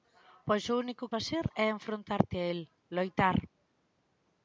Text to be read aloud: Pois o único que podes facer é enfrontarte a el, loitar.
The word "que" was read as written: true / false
false